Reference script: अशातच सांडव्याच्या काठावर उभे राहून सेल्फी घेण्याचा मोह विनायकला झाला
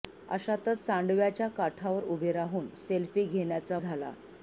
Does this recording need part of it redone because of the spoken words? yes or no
yes